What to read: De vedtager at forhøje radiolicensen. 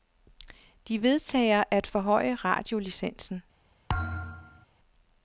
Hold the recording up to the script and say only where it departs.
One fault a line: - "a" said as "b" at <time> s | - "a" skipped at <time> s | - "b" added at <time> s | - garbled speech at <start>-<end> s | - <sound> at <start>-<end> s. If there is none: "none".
- thud at 3.9-4.7 s